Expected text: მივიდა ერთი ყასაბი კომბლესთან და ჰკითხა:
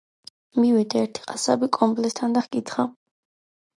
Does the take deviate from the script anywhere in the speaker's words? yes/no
no